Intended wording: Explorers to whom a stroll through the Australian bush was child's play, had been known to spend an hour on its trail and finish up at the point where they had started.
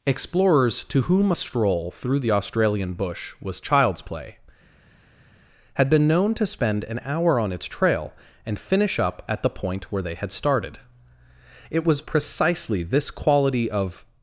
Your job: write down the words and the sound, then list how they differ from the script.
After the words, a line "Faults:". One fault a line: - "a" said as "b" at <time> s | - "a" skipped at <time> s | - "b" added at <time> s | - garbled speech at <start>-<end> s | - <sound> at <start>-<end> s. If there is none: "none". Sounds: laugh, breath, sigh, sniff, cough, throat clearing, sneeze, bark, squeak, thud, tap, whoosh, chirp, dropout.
Explorers to whom a stroll through the Australian bush was child's play, had been known to spend an hour on its trail and finish up at the point where they had started. It was precisely this quality of
Faults:
- "It was precisely this quality of" added at 11.7 s